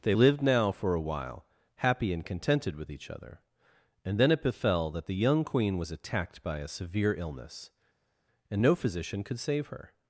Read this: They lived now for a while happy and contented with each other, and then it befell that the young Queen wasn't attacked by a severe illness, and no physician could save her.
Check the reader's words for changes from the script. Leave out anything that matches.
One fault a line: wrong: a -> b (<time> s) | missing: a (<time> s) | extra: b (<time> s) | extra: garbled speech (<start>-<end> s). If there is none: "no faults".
wrong: wasn't -> was (5.8 s)